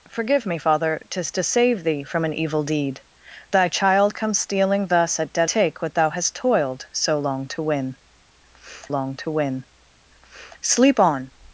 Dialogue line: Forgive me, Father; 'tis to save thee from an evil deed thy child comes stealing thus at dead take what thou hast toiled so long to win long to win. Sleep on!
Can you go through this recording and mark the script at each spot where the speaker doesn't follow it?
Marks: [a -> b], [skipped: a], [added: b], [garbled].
Forgive me, Father; 'tis to save thee from an evil deed thy child comes stealing thus at dead take what thou hast toiled so long to win long to win. Sleep on!